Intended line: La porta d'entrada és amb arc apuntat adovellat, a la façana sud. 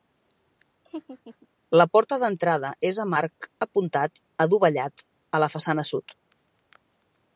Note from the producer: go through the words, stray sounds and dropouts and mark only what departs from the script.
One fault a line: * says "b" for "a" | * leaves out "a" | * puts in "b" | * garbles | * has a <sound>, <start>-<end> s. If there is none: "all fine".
* has a laugh, 0.9-1.5 s